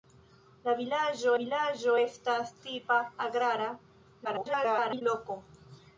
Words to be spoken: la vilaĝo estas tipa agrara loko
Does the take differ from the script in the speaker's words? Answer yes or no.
yes